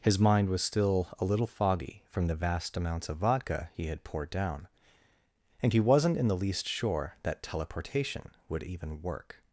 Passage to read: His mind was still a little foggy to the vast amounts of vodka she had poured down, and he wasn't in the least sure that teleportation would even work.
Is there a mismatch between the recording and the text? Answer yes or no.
yes